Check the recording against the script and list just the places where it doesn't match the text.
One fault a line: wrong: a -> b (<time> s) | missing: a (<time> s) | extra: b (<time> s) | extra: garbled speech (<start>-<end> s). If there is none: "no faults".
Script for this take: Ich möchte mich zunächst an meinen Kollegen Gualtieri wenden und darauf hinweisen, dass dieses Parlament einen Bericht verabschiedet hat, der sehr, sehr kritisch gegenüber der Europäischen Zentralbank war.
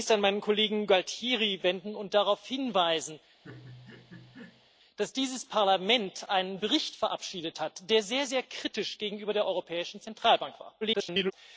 extra: garbled speech (10.8-11.3 s)